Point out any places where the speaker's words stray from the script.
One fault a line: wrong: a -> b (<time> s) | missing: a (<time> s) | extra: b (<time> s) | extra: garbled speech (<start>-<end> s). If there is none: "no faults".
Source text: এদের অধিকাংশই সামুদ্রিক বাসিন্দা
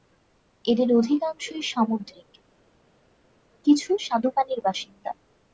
extra: কিছু স্বাদুপানির (3.7 s)